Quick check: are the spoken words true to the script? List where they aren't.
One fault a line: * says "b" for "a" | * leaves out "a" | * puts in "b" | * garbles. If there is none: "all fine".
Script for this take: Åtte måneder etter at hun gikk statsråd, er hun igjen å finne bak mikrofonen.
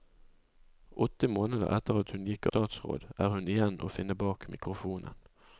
all fine